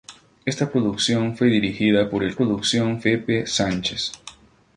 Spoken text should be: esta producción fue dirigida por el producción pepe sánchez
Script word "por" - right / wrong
right